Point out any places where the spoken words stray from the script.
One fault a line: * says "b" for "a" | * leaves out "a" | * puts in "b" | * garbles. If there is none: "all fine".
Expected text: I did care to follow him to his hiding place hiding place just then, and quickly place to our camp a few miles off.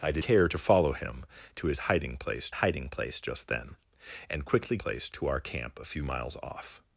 all fine